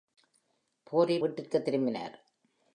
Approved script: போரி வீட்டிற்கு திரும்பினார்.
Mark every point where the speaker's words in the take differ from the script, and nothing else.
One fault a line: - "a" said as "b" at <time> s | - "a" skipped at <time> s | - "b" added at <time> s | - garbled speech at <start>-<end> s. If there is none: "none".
none